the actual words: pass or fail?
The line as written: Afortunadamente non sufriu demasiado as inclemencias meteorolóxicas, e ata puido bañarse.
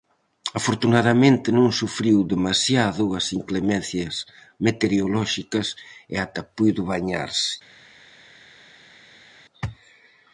pass